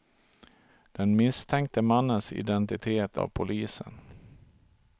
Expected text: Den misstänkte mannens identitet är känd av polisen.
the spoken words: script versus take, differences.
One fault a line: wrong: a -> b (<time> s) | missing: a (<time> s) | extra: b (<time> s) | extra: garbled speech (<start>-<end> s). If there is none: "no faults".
missing: är känd (3.2 s)